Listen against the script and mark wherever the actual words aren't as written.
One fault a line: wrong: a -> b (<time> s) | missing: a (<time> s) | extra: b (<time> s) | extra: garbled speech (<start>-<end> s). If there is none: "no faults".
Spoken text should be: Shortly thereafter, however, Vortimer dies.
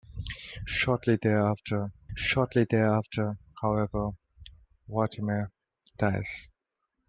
extra: shortly thereafter (2.1 s)